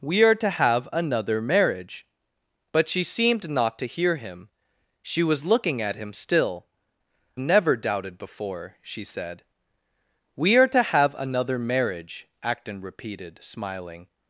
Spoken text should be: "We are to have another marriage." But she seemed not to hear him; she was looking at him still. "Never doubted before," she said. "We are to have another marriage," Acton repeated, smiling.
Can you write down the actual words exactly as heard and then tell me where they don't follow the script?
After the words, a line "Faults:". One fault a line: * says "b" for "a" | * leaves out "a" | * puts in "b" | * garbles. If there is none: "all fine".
"We are to have another marriage." But she seemed not to hear him; she was looking at him still. "Never doubted before," she said. "We are to have another marriage," Acton repeated, smiling.
Faults:
all fine